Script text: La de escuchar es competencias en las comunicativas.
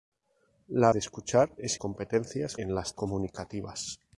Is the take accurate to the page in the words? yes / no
yes